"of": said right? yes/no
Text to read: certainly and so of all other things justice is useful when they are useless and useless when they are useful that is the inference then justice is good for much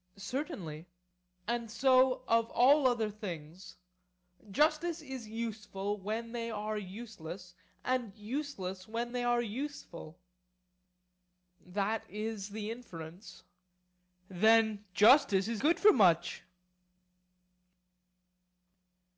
yes